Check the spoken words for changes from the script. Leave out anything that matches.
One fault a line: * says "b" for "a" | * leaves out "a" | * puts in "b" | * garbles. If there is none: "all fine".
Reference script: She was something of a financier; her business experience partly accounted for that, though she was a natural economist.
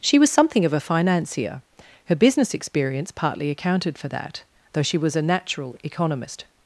all fine